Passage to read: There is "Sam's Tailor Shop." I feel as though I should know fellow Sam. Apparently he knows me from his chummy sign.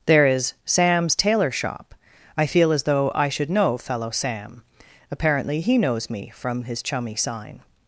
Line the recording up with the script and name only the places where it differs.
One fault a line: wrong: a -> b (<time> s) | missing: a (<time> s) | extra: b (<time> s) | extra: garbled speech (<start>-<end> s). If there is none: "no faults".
no faults